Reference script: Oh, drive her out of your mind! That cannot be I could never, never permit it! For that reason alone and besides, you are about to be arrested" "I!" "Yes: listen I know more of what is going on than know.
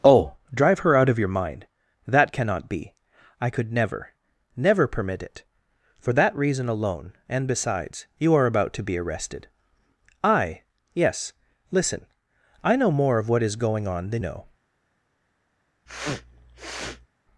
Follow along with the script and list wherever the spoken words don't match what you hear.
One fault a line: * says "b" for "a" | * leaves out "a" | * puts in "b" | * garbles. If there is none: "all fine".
all fine